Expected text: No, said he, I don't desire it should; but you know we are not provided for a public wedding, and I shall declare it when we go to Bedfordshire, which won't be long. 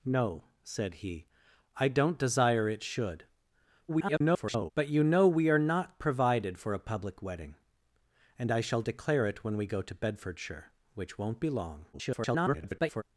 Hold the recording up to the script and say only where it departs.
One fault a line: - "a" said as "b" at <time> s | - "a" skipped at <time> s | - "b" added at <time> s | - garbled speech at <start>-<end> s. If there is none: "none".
- garbled speech at 3.9-4.7 s
- garbled speech at 11.9-13.0 s